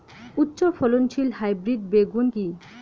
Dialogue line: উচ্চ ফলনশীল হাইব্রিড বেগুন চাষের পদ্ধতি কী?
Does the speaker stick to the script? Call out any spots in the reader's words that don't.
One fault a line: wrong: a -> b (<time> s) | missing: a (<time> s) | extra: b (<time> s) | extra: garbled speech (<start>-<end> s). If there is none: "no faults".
missing: চাষের পদ্ধতি (2.2 s)